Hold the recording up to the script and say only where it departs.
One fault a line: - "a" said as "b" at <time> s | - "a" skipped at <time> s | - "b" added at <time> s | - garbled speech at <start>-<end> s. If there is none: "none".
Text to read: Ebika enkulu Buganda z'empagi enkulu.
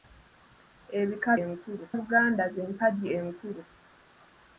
none